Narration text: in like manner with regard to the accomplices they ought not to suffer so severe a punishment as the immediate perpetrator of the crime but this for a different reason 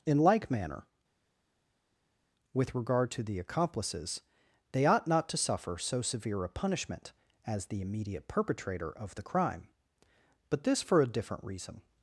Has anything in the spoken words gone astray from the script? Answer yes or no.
no